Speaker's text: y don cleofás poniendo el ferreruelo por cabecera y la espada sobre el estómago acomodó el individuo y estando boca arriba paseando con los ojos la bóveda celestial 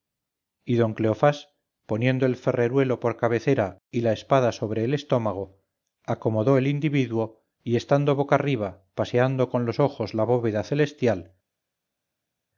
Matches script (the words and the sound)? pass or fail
pass